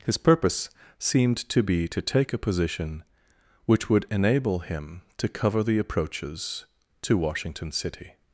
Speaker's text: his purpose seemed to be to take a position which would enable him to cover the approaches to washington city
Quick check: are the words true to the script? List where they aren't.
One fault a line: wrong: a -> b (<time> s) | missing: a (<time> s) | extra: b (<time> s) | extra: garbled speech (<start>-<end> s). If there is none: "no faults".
no faults